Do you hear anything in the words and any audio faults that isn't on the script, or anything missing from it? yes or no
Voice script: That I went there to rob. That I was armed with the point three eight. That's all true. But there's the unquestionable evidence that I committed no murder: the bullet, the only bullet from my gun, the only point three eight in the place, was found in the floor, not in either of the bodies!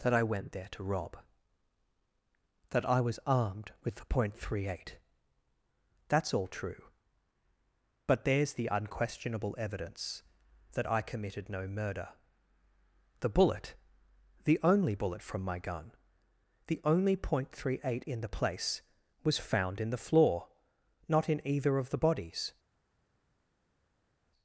no